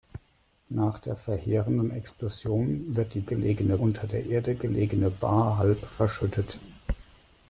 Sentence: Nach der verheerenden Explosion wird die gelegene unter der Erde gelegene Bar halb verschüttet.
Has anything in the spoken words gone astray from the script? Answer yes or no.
no